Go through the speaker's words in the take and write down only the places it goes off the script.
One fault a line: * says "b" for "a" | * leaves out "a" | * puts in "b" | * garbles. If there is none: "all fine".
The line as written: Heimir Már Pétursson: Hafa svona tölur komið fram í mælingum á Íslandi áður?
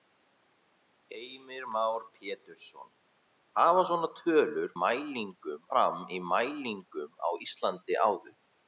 * says "mælingum" for "komið"